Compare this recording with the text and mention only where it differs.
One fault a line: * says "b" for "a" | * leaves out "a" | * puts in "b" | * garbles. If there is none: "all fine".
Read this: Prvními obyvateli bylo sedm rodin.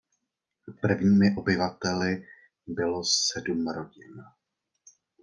all fine